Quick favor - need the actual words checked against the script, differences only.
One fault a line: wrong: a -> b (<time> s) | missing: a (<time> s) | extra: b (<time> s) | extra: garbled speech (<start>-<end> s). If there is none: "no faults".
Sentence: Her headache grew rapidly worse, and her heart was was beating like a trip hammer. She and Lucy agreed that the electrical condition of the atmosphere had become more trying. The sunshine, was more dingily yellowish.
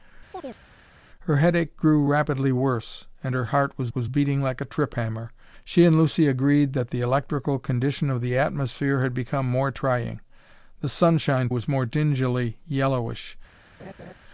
no faults